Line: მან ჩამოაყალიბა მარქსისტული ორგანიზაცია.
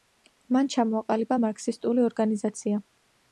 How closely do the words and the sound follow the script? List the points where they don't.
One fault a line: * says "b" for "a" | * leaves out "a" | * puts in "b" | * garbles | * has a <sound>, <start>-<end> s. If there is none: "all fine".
all fine